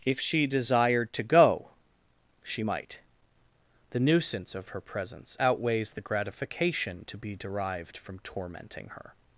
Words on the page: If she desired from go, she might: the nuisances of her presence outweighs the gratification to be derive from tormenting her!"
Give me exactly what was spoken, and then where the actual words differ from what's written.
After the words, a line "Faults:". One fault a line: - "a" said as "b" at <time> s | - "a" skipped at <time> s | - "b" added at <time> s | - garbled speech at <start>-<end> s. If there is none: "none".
If she desired to go, she might: the nuisance of her presence outweighs the gratification to be derived from tormenting her!"
Faults:
- "from" said as "to" at 1.1 s
- "nuisances" said as "nuisance" at 4.0 s
- "derive" said as "derived" at 7.3 s